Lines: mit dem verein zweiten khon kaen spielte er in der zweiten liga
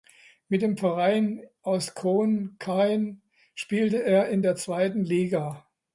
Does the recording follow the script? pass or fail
fail